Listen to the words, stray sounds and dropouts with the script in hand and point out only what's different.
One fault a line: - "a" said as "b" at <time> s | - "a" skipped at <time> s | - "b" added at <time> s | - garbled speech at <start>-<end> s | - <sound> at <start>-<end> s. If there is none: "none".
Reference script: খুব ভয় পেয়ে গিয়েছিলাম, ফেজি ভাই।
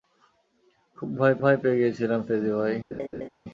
- "ভয়" added at 1.4 s
- laugh at 2.9-3.3 s